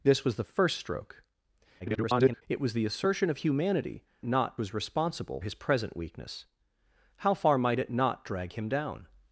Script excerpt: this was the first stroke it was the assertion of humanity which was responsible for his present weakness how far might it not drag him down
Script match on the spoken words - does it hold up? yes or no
no